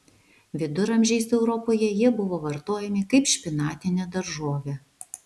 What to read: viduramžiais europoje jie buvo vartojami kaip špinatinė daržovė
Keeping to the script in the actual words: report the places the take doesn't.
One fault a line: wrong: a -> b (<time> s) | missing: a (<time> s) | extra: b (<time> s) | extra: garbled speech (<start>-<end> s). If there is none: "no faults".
no faults